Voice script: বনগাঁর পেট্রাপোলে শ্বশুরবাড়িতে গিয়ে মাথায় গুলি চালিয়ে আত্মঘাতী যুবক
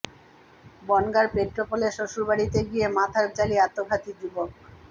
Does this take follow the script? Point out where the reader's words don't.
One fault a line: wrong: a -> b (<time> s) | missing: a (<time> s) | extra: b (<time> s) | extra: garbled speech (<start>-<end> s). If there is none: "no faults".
missing: গুলি (3.3 s)